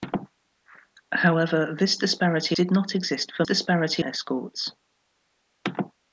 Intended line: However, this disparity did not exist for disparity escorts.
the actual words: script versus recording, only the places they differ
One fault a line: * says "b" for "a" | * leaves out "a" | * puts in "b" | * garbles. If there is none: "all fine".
all fine